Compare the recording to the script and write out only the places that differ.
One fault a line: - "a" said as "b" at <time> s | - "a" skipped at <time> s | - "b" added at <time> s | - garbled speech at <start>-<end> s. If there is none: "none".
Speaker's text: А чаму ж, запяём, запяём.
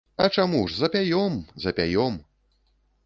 none